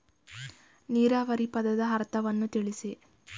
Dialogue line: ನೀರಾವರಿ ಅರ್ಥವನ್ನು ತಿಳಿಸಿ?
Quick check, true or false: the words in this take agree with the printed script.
false